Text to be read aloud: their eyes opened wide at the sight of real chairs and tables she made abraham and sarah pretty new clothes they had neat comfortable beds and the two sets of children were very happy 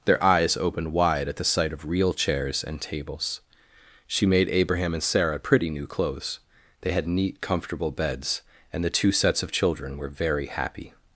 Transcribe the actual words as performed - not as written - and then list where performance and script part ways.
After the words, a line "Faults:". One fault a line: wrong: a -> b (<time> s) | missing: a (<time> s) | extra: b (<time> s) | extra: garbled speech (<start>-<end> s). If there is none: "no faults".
their eyes opened wide at the sight of real chairs and tables she made abraham and sarah pretty new clothes they had neat comfortable beds and the two sets of children were very happy
Faults:
no faults